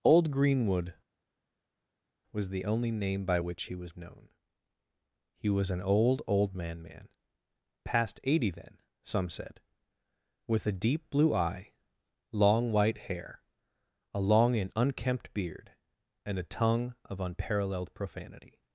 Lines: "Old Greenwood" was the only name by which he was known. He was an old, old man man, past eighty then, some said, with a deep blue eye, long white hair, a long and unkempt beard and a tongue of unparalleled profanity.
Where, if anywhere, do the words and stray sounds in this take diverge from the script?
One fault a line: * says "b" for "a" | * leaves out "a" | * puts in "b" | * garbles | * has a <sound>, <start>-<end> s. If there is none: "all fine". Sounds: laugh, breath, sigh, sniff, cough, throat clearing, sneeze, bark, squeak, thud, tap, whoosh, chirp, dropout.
all fine